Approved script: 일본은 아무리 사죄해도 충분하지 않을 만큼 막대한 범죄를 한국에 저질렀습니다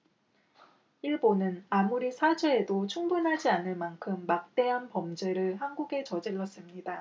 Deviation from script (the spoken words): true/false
false